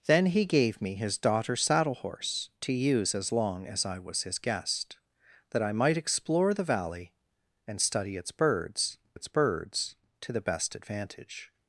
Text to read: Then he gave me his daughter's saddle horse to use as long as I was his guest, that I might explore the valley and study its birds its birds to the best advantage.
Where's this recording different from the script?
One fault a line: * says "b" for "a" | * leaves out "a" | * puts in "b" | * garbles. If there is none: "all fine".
all fine